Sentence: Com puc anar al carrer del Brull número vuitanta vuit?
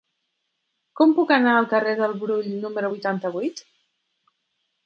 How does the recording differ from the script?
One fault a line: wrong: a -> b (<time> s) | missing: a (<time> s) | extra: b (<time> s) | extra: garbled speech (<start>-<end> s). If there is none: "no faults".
no faults